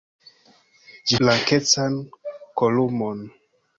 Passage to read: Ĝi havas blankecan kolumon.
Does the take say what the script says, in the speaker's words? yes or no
no